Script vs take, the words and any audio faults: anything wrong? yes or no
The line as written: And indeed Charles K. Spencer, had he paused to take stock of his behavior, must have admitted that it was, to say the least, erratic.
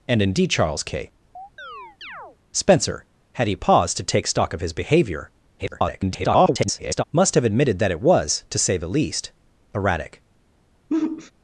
yes